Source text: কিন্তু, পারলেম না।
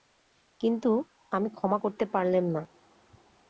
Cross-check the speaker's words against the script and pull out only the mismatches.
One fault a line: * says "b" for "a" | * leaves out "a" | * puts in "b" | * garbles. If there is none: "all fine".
* puts in "আমি ক্ষমা করতে"